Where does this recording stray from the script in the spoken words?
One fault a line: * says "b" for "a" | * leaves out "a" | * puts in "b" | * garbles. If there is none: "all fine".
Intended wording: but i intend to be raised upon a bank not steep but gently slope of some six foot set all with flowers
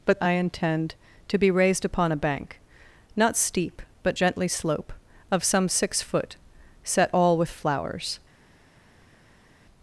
all fine